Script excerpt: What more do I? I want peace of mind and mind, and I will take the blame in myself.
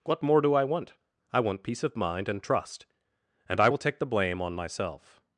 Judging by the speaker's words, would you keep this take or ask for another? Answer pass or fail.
fail